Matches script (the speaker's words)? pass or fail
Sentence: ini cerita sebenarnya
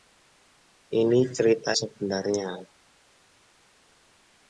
pass